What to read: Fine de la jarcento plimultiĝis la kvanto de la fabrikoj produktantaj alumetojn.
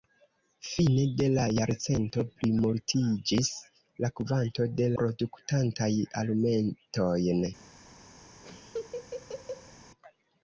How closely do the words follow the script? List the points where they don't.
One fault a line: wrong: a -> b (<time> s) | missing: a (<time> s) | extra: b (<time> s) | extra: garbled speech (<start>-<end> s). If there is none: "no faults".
missing: la fabrikoj (4.9 s)